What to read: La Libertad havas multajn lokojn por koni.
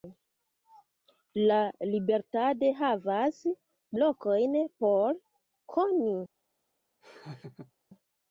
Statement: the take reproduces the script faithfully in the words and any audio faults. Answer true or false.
false